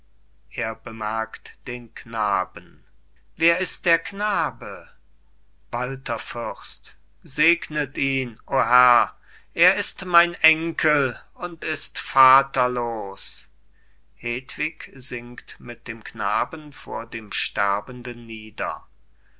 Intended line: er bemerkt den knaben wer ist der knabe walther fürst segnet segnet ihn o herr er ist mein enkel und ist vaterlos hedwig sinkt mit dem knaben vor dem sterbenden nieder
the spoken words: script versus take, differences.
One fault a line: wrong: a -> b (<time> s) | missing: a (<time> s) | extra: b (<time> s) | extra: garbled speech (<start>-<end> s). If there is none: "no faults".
missing: segnet (8.0 s)